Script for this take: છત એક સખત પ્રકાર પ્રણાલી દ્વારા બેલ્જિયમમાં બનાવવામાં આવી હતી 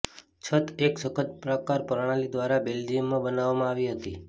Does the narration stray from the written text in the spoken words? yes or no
no